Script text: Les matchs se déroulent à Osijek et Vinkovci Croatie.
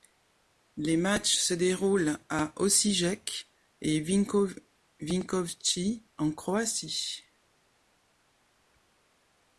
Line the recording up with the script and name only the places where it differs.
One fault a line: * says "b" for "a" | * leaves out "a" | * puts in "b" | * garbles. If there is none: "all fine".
* puts in "en"